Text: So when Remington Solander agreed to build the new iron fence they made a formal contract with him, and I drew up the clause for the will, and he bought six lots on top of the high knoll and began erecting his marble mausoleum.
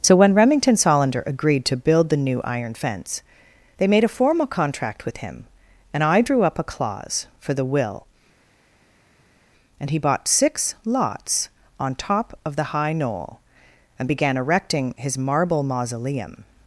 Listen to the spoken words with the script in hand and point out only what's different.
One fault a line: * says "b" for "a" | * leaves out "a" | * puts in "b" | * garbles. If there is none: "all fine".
* says "a" for "the"